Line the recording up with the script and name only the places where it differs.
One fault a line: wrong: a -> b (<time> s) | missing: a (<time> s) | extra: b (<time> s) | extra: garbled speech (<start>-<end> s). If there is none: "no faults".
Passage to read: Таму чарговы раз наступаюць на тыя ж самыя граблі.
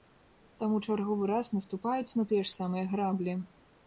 no faults